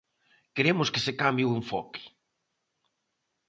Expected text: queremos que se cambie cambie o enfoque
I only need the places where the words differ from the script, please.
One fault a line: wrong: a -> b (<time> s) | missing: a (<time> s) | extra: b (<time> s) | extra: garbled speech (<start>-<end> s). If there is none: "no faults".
missing: cambie (1.5 s)